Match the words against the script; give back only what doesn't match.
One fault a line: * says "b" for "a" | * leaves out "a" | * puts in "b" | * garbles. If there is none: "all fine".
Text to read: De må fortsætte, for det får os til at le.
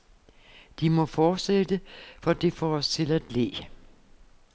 all fine